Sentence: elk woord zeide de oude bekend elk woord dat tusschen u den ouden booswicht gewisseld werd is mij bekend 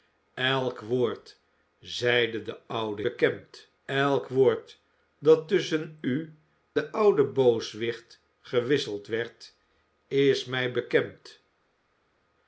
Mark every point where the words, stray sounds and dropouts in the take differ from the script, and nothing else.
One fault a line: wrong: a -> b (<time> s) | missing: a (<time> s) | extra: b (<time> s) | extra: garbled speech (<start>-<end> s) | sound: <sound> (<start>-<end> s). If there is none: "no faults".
no faults